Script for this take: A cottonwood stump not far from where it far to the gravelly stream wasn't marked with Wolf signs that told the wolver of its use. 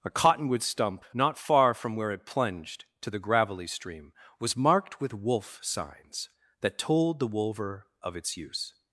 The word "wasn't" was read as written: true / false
false